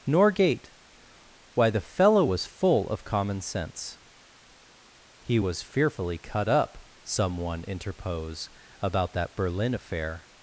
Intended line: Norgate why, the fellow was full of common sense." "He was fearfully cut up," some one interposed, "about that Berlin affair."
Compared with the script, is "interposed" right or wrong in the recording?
wrong